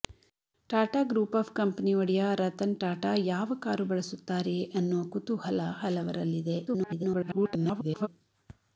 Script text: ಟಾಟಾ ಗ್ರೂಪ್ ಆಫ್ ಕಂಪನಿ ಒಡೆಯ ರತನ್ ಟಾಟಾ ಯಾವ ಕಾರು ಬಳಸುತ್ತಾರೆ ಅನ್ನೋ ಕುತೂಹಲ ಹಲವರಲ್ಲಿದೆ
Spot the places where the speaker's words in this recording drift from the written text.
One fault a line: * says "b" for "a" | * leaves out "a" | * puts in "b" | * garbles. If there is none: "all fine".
* garbles